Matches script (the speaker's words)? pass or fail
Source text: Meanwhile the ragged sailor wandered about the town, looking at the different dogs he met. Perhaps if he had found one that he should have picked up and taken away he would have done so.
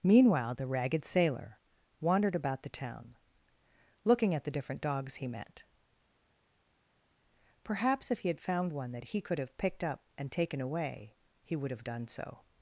fail